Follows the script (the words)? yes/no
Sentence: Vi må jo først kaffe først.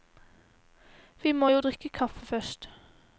no